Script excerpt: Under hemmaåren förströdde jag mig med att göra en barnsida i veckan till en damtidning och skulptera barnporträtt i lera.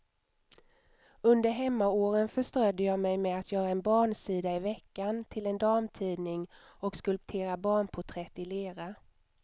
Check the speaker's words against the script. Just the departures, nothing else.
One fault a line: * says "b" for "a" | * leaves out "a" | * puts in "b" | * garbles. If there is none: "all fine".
all fine